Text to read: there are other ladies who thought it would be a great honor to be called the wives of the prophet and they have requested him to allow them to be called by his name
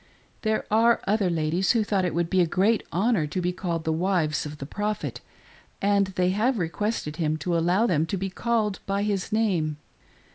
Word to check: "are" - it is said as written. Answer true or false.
true